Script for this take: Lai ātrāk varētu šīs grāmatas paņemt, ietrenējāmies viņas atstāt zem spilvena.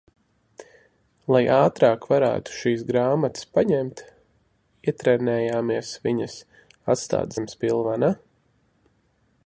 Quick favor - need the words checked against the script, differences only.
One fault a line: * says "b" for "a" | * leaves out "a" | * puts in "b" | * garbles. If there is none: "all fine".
all fine